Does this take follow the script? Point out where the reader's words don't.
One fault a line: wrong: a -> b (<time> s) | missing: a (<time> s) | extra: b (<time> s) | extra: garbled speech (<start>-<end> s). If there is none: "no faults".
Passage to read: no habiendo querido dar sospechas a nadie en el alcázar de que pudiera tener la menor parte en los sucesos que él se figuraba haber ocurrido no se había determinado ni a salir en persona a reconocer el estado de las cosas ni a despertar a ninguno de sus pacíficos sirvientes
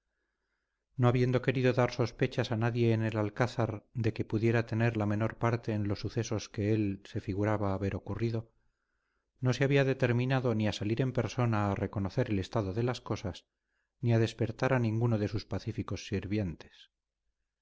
no faults